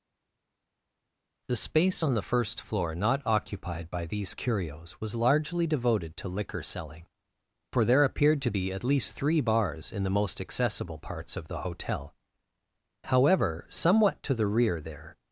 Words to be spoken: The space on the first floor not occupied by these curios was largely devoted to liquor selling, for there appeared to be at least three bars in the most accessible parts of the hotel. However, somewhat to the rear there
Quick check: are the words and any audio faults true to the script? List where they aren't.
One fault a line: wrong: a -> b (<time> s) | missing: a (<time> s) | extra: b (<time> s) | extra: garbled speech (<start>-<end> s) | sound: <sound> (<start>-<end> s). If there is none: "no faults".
no faults